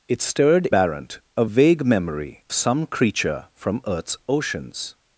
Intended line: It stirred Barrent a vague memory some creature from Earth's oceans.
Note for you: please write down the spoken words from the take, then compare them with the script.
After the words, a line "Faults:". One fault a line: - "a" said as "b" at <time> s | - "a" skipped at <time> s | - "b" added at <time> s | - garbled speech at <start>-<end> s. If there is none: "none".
It stirred Barrent a vague memory some creature from Earth's oceans.
Faults:
none